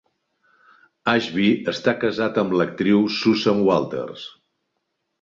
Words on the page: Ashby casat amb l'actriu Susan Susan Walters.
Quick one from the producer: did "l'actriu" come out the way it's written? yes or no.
yes